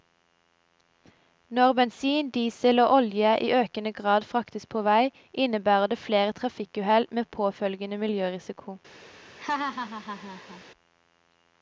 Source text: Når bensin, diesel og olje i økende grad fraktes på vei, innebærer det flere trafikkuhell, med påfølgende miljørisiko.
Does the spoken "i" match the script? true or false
true